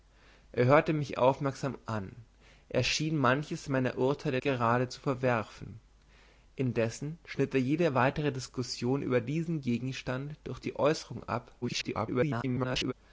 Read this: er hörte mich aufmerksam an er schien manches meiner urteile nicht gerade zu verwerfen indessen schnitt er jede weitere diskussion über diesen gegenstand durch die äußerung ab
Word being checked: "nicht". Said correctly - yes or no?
no